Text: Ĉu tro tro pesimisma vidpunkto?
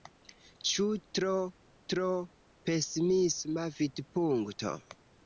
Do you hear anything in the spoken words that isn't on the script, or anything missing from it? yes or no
no